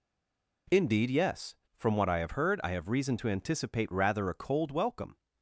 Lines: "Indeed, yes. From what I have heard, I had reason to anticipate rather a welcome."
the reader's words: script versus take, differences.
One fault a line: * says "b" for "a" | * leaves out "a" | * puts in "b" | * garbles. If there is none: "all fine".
* says "have" for "had"
* puts in "cold"